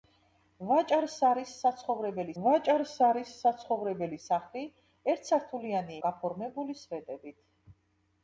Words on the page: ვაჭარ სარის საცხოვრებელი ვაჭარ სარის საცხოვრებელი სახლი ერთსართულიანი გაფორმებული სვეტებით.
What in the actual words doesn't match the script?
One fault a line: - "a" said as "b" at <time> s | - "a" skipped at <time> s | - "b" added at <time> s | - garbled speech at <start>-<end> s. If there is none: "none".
none